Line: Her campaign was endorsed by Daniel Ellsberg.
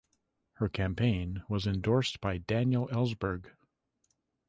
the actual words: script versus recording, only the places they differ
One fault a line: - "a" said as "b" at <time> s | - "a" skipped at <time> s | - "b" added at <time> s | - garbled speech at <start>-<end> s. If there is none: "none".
none